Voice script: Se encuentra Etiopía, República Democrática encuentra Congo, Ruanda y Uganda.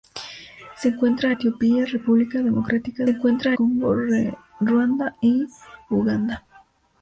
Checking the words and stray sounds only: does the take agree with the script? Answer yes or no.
yes